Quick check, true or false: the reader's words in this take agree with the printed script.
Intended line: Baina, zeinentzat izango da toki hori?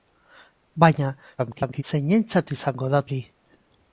false